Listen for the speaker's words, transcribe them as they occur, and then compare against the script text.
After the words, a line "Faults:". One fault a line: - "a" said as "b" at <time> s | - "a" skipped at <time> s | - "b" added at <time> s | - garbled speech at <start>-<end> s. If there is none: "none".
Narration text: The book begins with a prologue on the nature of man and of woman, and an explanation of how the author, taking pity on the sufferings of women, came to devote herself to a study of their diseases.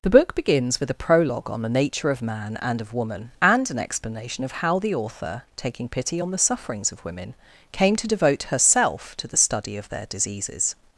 The book begins with a prologue on the nature of man and of woman, and an explanation of how the author, taking pity on the sufferings of women, came to devote herself to the study of their diseases.
Faults:
- "a" said as "the" at 9.3 s